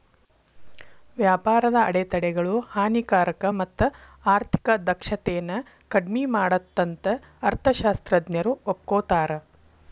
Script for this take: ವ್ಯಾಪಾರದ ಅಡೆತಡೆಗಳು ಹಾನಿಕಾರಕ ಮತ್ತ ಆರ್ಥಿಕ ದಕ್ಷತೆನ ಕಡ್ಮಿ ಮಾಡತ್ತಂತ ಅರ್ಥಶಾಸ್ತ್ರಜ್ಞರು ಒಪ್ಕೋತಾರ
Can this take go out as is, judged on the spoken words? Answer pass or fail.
pass